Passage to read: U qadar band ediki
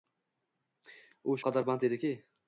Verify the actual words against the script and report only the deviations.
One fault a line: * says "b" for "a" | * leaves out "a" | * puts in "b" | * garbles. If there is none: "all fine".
all fine